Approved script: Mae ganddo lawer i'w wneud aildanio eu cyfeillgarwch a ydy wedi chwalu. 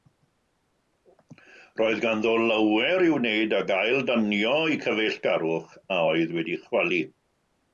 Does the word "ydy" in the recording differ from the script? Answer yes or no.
yes